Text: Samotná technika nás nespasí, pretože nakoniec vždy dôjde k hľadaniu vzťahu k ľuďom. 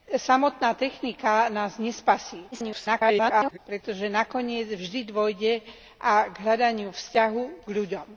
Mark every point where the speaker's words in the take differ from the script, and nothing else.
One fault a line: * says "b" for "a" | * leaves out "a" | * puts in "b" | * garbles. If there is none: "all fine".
* garbles